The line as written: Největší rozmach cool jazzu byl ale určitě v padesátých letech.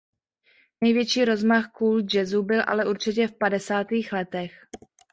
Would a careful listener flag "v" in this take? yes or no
no